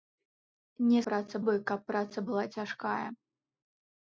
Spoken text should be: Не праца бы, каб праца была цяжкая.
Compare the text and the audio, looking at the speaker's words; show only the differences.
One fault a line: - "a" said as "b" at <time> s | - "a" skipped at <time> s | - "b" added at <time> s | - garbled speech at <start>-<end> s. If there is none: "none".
none